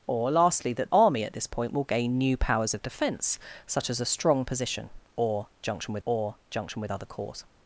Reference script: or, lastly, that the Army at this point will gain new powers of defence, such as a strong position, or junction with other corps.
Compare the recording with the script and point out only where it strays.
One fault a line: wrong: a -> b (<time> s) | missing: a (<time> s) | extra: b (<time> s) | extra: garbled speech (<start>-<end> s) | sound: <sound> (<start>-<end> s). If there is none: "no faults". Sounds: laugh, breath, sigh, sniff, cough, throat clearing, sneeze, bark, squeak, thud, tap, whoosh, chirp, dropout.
missing: the (0.9 s)
extra: or junction with (6.0 s)